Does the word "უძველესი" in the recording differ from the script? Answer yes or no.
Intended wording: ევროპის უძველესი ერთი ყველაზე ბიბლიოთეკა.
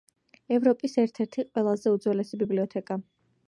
yes